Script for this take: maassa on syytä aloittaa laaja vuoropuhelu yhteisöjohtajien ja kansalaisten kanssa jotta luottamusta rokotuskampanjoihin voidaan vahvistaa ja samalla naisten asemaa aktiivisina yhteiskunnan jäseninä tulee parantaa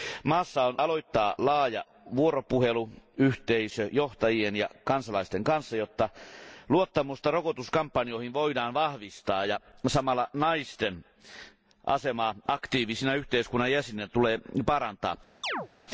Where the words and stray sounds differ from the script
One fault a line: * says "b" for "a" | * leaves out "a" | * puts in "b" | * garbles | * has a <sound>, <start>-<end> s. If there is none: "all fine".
* leaves out "syytä"
* has a chirp, 15.4-15.7 s